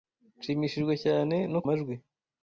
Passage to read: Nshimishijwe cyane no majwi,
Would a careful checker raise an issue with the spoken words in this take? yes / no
no